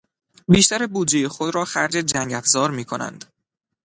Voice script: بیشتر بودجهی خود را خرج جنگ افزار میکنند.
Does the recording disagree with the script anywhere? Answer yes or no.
no